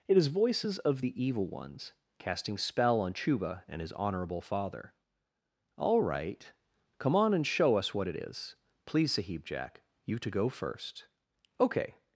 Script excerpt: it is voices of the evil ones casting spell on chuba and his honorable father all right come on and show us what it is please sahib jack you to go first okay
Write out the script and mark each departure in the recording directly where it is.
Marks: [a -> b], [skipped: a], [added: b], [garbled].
it is voices of the evil ones casting spell on chuba and his honorable father all right come on and show us what it is please sahib jack you to go first okay